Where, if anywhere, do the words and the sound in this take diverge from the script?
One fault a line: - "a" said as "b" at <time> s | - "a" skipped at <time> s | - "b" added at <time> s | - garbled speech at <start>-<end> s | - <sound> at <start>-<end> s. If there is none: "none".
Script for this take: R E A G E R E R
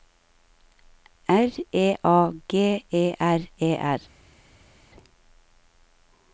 none